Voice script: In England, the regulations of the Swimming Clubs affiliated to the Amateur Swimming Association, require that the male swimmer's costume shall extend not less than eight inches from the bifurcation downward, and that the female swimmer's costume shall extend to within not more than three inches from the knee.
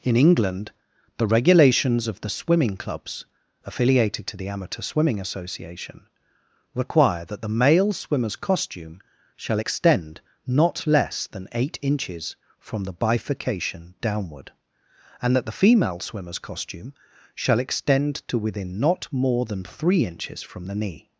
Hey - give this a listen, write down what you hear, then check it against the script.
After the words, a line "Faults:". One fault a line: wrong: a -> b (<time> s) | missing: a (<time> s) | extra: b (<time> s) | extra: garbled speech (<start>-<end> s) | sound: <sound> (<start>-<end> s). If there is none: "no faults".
In England, the regulations of the Swimming Clubs affiliated to the Amateur Swimming Association, require that the male swimmer's costume shall extend not less than eight inches from the bifurcation downward, and that the female swimmer's costume shall extend to within not more than three inches from the knee.
Faults:
no faults